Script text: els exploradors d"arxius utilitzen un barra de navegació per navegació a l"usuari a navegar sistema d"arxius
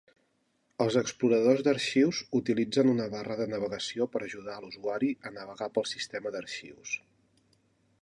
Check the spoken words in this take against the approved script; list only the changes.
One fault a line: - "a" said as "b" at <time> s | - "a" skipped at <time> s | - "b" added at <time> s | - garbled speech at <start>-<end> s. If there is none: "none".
- "un" said as "una" at 3.0 s
- "navegació" said as "ajudar" at 4.3 s
- "pel" added at 5.8 s